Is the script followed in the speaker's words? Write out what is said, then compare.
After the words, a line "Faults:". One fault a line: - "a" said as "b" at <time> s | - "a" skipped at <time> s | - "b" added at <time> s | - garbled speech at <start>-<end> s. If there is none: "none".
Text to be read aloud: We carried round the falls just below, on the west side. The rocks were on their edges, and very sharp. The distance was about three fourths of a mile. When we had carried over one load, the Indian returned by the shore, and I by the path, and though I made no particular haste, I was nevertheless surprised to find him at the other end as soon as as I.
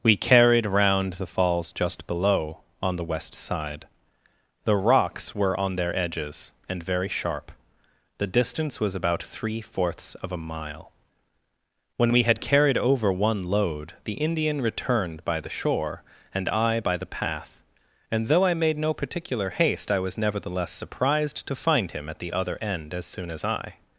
We carried round the falls just below, on the west side. The rocks were on their edges, and very sharp. The distance was about three fourths of a mile. When we had carried over one load, the Indian returned by the shore, and I by the path, and though I made no particular haste, I was nevertheless surprised to find him at the other end as soon as I.
Faults:
- "as" skipped at 23.4 s